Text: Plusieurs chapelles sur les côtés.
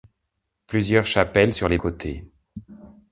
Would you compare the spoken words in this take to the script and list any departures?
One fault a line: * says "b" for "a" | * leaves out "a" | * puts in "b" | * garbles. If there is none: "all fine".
all fine